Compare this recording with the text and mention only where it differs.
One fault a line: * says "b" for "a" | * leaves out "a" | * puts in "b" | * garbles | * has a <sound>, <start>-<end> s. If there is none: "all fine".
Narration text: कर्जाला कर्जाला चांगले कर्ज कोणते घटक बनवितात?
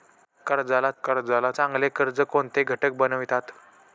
all fine